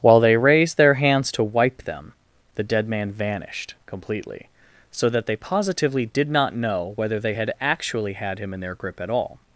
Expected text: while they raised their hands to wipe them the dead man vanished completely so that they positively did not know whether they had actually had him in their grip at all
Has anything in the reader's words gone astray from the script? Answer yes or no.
no